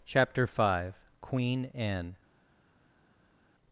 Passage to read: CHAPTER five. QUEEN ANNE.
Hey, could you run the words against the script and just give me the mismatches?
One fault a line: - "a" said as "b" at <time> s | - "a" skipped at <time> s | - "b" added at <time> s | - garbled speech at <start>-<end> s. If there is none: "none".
none